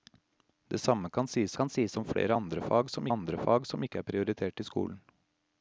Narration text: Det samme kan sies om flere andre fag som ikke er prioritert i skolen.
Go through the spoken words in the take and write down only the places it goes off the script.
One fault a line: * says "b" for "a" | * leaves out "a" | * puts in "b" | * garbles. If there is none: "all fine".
* puts in "kan sies"
* puts in "andre fag som"